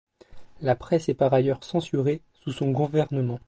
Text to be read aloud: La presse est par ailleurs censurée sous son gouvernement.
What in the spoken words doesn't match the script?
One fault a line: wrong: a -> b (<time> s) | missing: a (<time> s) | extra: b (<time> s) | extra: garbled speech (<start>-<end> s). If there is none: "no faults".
no faults